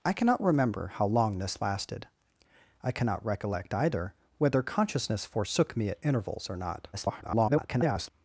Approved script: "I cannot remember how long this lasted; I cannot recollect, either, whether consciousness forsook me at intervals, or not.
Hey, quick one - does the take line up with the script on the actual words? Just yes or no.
no